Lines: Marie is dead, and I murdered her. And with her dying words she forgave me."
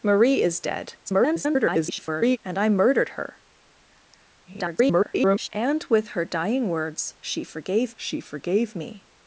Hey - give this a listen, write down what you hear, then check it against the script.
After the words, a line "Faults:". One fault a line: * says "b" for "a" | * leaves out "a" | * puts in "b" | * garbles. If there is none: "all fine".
Marie is dead, [garbled] and I murdered her. [garbled] And with her dying words she forgave she forgave me."
Faults:
* garbles
* garbles
* puts in "she forgave"